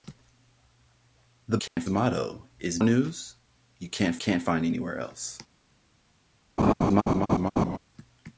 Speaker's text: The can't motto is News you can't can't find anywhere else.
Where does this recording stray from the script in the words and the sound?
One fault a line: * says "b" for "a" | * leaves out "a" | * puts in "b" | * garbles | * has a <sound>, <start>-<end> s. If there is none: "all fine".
* has a dropout, 1.7-1.8 s
* has a laugh, 6.6-7.8 s